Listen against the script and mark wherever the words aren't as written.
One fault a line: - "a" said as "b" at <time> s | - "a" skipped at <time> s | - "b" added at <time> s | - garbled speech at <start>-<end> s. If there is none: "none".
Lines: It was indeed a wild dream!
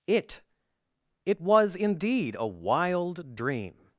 - "it" added at 1.3 s